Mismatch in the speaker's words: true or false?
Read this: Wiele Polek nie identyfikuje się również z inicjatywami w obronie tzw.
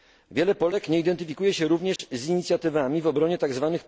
false